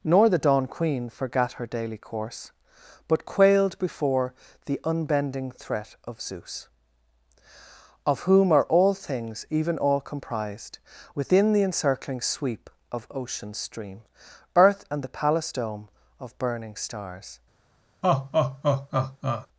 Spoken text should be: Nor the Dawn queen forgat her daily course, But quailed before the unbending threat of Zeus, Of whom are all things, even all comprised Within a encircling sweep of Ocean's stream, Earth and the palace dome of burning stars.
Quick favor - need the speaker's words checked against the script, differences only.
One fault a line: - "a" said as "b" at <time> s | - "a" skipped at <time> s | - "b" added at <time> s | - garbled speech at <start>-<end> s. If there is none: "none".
- "a" said as "the" at 11.5 s